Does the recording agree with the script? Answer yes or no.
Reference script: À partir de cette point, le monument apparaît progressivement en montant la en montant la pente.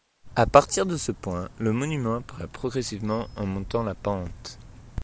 no